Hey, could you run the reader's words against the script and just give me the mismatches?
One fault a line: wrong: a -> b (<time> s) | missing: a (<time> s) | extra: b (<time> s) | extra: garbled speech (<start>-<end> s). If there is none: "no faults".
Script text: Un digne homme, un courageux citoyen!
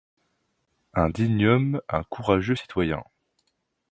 no faults